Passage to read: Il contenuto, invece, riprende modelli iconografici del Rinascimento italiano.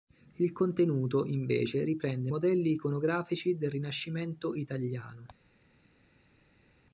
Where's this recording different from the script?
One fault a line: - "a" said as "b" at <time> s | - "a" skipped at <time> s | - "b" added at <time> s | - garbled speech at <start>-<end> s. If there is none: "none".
none